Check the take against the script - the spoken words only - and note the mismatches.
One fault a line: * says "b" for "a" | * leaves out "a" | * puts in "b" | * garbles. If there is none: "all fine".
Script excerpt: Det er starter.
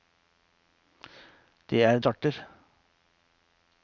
all fine